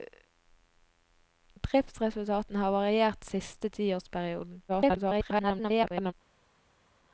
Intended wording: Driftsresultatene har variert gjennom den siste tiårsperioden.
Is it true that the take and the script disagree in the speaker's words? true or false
true